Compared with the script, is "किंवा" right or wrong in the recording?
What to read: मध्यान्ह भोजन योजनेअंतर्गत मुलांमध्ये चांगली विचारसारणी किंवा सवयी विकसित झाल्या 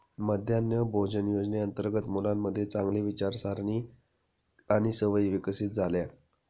wrong